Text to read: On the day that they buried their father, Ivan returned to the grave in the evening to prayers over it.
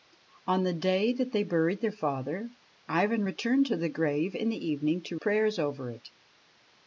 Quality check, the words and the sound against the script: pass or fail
pass